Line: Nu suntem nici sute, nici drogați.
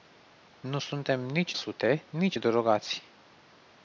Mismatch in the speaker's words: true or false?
false